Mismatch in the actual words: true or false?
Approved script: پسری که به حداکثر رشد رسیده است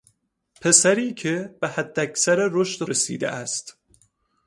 false